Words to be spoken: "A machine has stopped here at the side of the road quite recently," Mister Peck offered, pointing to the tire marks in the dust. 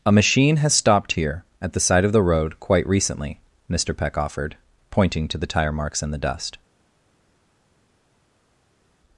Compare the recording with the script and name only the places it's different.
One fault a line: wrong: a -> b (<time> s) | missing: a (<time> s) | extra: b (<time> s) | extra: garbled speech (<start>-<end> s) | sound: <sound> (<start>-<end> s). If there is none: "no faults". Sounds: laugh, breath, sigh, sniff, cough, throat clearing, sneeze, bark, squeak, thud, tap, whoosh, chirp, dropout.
no faults